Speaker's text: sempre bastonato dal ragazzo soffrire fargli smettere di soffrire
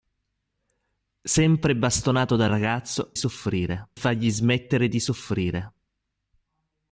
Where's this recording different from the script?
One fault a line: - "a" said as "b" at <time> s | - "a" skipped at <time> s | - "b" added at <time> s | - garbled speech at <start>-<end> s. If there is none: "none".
none